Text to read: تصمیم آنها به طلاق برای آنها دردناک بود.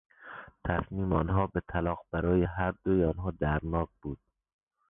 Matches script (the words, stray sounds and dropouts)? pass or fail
fail